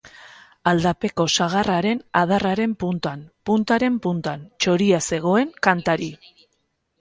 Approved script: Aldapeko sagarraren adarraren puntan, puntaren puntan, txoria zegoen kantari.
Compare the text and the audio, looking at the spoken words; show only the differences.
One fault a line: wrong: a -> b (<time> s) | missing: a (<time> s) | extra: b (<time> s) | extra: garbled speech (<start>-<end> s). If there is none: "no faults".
no faults